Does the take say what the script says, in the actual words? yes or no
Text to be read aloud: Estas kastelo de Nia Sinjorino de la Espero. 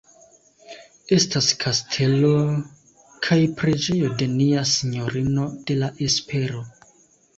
no